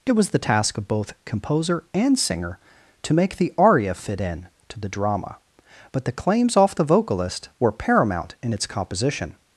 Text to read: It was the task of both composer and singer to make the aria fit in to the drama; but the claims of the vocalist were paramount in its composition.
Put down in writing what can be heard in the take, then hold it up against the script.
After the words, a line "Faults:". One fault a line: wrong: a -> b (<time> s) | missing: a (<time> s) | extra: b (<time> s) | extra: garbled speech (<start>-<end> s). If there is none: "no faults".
It was the task of both composer and singer to make the aria fit in to the drama; but the claims off the vocalist were paramount in its composition.
Faults:
wrong: of -> off (6.6 s)